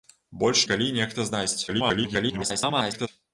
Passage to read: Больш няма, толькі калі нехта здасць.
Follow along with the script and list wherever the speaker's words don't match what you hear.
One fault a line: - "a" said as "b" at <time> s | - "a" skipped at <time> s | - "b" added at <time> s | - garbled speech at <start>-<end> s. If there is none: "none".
- "няма толькі" skipped at 0.6 s
- garbled speech at 1.7-3.1 s